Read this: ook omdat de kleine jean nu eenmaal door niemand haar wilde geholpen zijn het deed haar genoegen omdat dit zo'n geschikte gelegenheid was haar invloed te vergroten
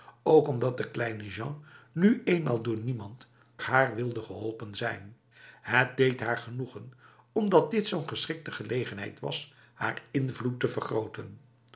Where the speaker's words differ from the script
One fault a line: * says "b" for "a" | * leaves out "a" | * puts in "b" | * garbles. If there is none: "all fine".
all fine